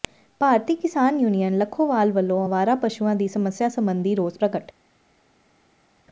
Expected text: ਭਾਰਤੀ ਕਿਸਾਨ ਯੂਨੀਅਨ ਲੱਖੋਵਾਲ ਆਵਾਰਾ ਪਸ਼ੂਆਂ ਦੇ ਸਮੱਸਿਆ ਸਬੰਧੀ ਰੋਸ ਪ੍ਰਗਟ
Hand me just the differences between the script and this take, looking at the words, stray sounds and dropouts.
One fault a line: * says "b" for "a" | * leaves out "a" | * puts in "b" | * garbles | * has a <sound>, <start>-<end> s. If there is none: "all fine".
* puts in "ਵੱਲੋਂ"
* says "ਦੀ" for "ਦੇ"